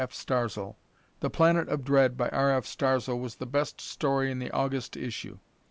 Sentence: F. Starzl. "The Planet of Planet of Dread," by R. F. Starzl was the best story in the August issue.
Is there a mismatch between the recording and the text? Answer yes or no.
yes